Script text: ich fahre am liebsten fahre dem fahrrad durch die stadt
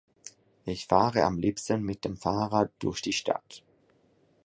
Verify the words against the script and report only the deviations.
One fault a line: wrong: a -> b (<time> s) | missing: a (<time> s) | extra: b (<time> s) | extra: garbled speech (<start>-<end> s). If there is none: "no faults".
wrong: fahre -> mit (1.8 s)